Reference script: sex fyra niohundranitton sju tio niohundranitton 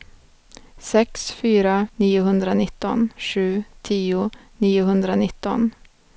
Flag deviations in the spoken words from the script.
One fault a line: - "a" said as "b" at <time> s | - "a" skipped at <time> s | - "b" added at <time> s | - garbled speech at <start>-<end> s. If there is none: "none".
none